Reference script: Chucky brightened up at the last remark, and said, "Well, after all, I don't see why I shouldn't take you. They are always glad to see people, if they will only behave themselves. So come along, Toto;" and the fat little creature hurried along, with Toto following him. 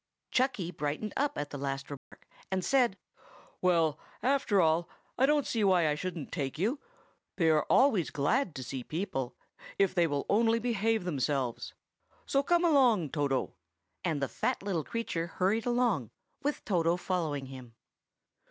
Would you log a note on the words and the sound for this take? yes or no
yes